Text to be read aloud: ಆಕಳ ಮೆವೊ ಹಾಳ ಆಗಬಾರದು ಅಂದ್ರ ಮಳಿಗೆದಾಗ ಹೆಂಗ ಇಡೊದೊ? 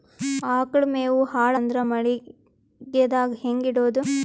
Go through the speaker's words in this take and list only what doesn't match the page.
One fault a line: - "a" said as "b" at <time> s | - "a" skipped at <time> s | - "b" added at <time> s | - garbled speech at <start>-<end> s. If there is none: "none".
- "ಆಗಬಾರದು" skipped at 1.5 s